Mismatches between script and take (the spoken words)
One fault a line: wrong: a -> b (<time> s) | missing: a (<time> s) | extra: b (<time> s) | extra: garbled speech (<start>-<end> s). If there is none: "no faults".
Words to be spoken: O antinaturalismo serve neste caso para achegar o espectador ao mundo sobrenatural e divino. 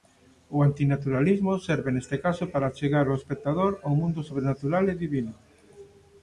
no faults